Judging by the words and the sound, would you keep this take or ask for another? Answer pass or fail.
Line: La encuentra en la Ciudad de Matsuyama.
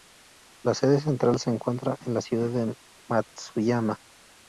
fail